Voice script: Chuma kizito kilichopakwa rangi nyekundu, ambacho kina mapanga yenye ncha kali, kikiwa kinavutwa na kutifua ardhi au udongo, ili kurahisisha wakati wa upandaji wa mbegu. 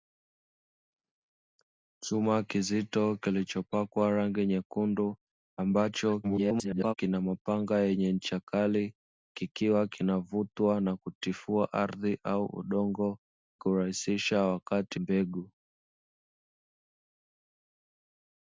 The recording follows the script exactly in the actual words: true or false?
false